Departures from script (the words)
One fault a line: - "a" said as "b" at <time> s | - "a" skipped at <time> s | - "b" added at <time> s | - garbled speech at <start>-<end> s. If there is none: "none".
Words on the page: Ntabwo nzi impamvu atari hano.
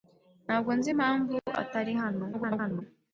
- garbled speech at 2.3-2.8 s